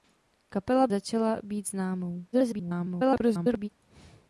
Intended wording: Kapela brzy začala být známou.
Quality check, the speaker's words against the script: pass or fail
fail